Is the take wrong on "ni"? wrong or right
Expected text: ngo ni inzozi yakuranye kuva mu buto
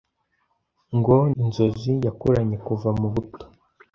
wrong